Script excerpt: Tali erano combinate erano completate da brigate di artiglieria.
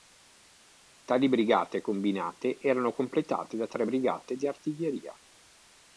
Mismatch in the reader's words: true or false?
true